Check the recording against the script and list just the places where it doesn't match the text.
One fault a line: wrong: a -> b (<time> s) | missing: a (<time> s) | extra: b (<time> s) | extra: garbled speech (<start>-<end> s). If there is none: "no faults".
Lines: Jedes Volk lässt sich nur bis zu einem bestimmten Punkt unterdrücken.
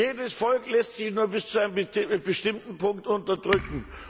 no faults